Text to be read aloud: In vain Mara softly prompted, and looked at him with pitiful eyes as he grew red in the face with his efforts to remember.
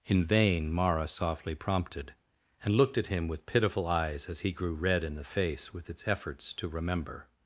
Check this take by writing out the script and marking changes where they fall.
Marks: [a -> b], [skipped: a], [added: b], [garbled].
In vain Mara softly prompted, and looked at him with pitiful eyes as he grew red in the face with [his -> its] efforts to remember.